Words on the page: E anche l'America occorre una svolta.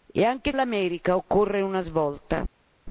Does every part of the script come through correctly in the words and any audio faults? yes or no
yes